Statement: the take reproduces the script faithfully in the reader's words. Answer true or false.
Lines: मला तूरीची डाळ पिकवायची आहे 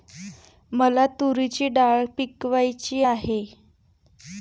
true